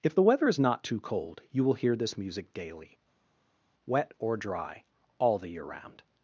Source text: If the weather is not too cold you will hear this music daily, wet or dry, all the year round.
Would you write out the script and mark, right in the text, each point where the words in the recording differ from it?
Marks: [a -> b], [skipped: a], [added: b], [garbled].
If the weather is not too cold you will hear this music daily, wet or dry, all the year round.